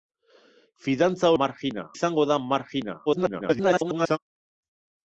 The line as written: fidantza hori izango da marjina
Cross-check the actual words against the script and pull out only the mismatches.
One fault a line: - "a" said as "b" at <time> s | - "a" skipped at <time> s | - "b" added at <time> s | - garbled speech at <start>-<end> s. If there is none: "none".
- "hori" said as "marjina" at 1.4 s
- garbled speech at 3.1-4.2 s